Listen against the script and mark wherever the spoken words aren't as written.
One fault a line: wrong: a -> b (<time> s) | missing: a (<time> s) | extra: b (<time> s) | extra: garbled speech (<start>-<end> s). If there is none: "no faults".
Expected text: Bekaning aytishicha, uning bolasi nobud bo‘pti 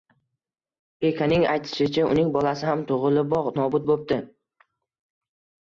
extra: ham tug‘iliboq (2.7 s)